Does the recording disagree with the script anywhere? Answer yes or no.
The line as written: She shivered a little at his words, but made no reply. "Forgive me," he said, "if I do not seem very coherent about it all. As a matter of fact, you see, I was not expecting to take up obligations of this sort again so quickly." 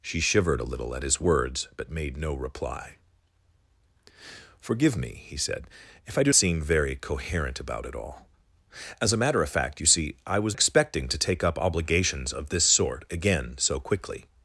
yes